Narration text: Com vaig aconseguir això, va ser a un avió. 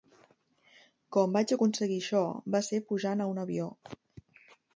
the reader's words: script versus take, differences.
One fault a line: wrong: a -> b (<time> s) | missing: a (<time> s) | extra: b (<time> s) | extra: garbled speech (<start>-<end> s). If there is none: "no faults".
extra: pujant (2.9 s)